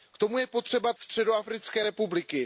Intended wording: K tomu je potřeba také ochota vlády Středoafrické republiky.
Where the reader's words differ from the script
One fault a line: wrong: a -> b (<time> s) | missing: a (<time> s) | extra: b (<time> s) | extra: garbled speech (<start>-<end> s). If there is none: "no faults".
missing: také ochota vlády (0.9 s)